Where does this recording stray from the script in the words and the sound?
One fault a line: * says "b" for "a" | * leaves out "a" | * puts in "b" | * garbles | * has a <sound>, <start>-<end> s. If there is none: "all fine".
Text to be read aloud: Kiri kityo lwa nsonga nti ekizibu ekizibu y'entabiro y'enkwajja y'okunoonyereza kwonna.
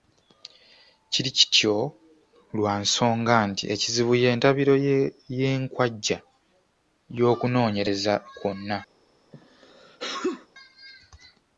* leaves out "ekizibu"
* has a sneeze, 9.3-10.5 s